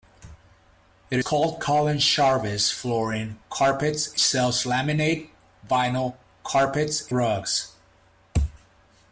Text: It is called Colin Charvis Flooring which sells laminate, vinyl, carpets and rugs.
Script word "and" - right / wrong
wrong